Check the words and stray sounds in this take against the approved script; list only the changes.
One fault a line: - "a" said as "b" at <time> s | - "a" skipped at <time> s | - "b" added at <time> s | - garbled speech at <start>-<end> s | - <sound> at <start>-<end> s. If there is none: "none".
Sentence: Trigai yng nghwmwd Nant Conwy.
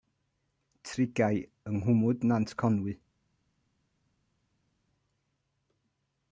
none